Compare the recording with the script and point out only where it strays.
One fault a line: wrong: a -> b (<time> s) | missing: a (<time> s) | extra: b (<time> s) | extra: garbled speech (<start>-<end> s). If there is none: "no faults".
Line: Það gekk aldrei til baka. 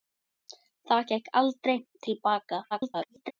extra: garbled speech (2.7-3.3 s)